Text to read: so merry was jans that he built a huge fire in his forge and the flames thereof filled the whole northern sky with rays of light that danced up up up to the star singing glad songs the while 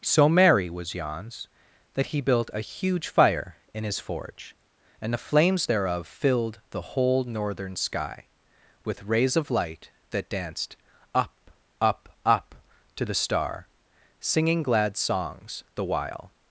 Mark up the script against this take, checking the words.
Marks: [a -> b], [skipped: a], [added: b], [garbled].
so merry was jans that he built a huge fire in his forge and the flames thereof filled the whole northern sky with rays of light that danced up up up to the star singing glad songs the while